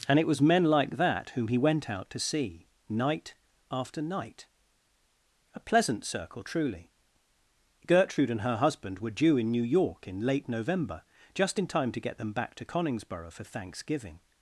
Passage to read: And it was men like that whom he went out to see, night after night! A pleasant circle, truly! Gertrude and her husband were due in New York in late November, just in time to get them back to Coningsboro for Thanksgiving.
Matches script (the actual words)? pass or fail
pass